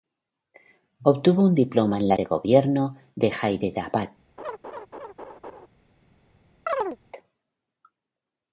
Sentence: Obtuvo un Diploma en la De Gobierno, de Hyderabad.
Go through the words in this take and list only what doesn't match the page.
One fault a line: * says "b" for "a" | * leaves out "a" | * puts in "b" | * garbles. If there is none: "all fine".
all fine